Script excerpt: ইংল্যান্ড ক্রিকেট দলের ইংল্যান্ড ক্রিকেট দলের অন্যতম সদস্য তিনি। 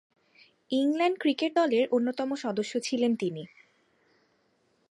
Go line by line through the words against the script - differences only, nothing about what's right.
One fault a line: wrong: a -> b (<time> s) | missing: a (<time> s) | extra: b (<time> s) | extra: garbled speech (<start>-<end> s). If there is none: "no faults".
missing: ইংল্যান্ড ক্রিকেট দলের (1.8 s)
extra: ছিলেন (2.8 s)